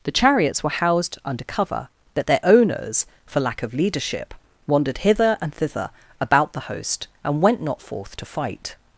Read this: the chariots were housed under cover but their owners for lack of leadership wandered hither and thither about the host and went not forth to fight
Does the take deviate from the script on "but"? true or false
true